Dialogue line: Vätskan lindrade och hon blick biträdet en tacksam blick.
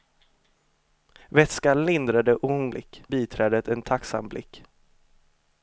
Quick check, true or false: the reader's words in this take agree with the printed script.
true